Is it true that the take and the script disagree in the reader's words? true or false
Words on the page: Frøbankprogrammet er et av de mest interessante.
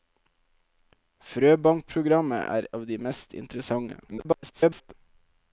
true